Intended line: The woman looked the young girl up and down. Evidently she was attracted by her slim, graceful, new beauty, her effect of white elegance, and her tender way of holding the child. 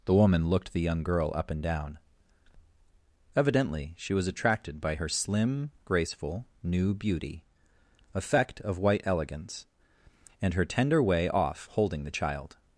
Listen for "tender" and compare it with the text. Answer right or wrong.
right